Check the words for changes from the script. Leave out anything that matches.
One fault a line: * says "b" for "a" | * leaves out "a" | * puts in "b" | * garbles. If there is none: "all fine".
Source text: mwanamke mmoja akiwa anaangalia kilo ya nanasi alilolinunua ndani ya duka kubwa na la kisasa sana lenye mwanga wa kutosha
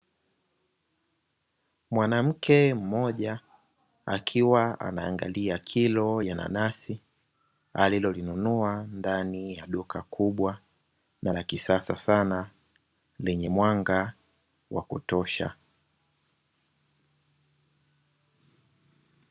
all fine